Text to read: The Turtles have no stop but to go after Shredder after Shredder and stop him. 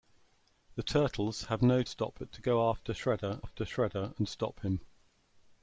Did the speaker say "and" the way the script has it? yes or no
yes